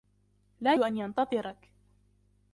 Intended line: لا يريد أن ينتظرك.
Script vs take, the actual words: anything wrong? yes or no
yes